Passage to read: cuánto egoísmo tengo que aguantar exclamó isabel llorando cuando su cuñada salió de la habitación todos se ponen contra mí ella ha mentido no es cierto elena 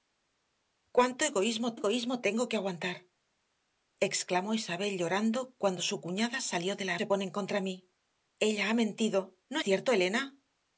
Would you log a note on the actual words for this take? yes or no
yes